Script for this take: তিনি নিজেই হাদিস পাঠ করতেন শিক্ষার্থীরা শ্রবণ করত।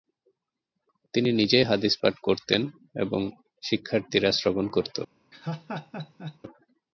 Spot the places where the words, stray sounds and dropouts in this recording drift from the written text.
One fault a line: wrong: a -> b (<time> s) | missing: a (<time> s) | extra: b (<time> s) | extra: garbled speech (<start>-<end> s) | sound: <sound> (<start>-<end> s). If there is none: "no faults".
extra: এবং (2.9 s)
sound: laugh (5.3-6.4 s)